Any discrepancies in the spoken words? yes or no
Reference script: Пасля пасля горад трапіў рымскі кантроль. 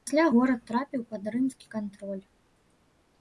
yes